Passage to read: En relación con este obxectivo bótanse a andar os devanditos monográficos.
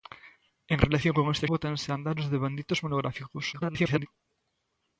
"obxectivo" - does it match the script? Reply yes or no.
no